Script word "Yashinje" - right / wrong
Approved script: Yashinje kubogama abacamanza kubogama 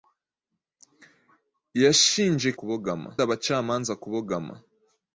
right